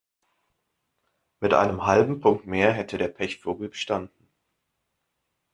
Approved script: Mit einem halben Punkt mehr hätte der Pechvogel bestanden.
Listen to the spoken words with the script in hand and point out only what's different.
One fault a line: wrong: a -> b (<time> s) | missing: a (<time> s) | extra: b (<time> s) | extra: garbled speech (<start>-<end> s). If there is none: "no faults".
no faults